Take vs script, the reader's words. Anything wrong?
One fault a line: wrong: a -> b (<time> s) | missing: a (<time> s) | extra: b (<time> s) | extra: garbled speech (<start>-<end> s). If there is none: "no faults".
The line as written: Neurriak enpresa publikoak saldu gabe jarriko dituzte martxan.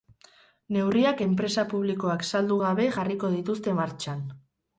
no faults